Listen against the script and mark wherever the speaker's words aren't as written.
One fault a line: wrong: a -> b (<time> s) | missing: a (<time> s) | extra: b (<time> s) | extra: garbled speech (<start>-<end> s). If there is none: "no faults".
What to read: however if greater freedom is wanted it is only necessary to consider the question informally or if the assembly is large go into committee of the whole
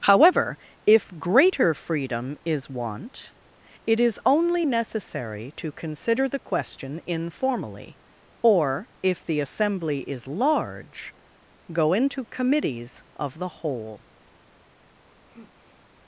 wrong: wanted -> want (2.7 s)
wrong: committee -> committees (12.3 s)